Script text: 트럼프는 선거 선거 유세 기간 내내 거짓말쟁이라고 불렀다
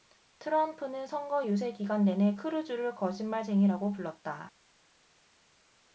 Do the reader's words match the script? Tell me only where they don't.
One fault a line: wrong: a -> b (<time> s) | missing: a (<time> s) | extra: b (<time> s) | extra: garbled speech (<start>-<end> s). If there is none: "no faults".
missing: 선거 (1.5 s)
extra: 크루즈를 (2.3 s)